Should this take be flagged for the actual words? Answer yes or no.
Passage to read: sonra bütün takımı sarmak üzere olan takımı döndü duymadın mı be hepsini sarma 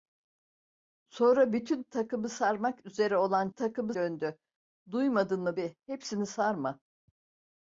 no